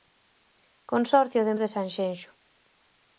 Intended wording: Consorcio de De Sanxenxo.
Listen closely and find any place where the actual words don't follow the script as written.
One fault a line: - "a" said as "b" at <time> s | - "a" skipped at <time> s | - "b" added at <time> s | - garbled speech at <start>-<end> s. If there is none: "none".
none